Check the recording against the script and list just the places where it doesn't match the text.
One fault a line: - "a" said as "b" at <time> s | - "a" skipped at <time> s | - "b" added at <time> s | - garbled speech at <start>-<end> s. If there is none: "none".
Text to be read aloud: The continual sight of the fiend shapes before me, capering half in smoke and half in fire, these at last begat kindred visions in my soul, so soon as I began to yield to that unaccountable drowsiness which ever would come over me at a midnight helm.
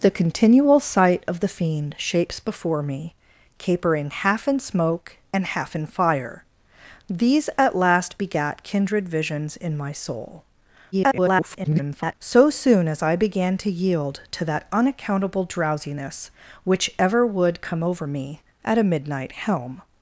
- garbled speech at 10.9-12.1 s